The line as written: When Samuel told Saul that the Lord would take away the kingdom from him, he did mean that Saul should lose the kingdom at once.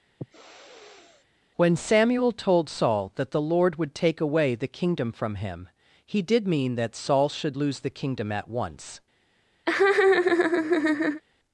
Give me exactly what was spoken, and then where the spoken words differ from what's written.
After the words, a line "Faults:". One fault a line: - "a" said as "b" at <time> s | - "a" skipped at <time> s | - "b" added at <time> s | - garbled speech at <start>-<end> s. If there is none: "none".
When Samuel told Saul that the Lord would take away the kingdom from him, he did mean that Saul should lose the kingdom at once.
Faults:
none